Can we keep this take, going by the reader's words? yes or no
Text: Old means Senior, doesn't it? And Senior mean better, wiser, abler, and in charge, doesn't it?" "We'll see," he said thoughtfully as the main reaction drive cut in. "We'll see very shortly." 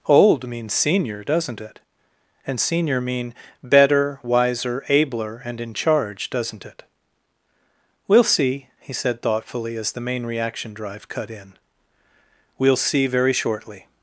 yes